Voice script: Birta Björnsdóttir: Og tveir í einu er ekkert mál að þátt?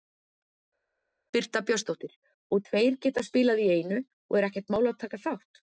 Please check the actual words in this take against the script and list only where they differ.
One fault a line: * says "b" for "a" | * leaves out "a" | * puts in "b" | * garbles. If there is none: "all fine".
* puts in "geta spilað"
* puts in "og"
* puts in "taka"